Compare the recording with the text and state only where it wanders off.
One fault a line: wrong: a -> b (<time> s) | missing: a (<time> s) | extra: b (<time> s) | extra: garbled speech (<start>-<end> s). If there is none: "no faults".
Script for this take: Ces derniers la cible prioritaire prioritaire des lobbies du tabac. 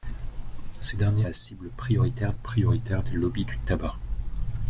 no faults